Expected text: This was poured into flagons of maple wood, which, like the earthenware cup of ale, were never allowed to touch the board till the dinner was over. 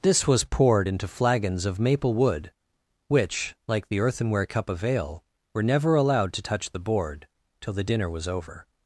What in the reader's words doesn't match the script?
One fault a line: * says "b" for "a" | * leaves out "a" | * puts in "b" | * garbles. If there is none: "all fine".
all fine